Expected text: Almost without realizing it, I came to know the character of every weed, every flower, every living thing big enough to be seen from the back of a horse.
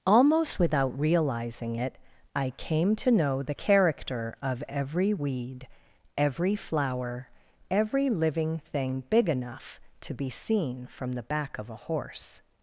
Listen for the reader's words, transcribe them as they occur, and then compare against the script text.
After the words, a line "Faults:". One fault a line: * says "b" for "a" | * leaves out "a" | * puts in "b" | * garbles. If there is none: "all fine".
Almost without realizing it, I came to know the character of every weed, every flower, every living thing big enough to be seen from the back of a horse.
Faults:
all fine